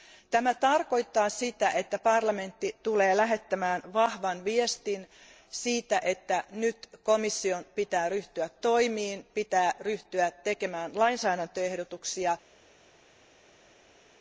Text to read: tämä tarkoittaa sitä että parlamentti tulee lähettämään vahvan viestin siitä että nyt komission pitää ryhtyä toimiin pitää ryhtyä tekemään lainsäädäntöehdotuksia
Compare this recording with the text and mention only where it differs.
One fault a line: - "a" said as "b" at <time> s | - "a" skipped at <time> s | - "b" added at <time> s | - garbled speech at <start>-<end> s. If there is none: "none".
none